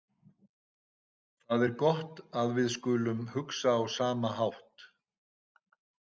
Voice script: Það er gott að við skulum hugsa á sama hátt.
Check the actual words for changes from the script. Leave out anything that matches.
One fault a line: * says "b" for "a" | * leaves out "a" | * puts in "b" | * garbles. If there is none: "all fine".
all fine